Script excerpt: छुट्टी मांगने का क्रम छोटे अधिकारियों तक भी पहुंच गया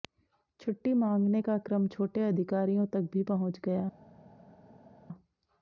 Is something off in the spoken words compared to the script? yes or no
no